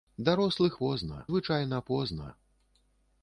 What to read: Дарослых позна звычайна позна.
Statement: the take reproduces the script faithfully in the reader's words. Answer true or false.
true